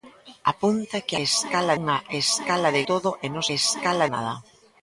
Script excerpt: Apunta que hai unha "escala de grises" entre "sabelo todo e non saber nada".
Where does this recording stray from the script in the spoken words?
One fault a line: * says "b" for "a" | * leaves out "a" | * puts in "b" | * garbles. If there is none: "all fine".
* says "escala" for "hai"
* leaves out "grises entre sabelo"
* says "escala" for "saber"